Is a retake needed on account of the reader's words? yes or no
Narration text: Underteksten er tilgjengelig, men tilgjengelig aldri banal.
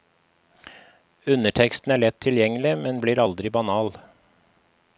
yes